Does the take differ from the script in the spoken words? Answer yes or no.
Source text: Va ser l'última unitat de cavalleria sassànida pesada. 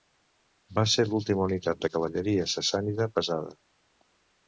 no